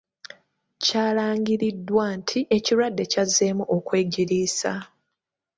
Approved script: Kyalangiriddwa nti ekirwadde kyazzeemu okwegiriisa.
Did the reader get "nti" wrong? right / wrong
right